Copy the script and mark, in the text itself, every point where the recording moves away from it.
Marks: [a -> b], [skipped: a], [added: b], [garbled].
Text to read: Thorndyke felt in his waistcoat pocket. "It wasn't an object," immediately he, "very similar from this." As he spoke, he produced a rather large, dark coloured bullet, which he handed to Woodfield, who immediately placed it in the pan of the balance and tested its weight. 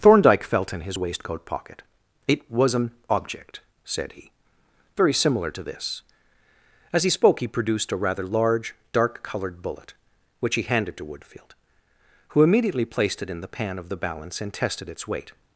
Thorndyke felt in his waistcoat pocket. "It [wasn't -> was] an object," [immediately -> said] he, "very similar [from -> to] this." As he spoke, he produced a rather large, dark coloured bullet, which he handed to Woodfield, who immediately placed it in the pan of the balance and tested its weight.